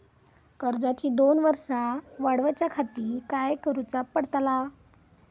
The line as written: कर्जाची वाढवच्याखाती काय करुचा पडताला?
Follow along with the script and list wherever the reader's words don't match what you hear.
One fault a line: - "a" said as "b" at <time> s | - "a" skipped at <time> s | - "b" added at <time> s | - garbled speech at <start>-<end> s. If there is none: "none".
- "दोन वर्सा" added at 1.1 s